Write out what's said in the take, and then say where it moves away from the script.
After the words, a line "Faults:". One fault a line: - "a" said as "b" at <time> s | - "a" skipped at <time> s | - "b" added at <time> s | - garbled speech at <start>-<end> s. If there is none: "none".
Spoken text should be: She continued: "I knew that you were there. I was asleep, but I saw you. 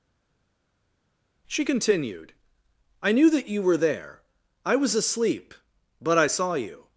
She continued: "I knew that you were there. I was asleep, but I saw you.
Faults:
none